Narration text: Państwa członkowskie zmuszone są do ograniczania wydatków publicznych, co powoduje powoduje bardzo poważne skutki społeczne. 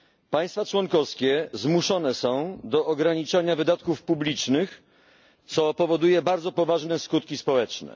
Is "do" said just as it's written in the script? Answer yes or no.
yes